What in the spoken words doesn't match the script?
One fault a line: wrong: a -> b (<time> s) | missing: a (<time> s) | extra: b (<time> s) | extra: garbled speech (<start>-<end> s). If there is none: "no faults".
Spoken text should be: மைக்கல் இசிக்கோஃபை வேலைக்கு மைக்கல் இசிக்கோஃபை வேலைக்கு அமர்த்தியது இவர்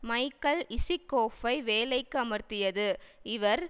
missing: மைக்கல் இசிக்கோஃபை வேலைக்கு (2.2 s)